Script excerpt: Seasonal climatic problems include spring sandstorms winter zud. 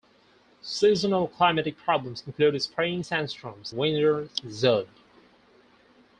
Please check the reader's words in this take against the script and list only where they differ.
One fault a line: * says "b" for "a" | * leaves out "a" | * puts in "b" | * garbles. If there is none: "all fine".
all fine